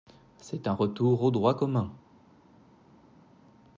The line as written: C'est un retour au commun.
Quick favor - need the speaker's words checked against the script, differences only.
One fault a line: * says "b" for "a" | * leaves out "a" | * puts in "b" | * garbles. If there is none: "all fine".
* puts in "droit"